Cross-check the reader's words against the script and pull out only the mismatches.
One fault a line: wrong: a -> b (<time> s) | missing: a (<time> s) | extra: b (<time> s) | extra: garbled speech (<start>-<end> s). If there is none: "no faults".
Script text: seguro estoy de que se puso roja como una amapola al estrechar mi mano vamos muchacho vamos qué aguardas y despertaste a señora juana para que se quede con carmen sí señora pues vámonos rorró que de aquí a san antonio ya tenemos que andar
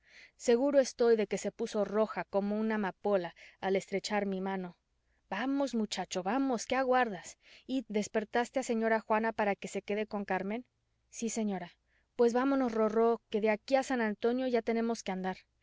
no faults